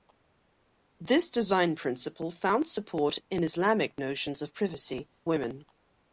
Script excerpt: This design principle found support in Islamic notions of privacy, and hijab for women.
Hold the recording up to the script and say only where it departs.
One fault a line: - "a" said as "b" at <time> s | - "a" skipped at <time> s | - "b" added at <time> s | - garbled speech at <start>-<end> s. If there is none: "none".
- "and hijab for" skipped at 5.1 s